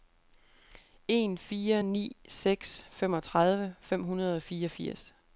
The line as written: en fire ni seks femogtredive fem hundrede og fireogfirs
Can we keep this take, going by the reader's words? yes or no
yes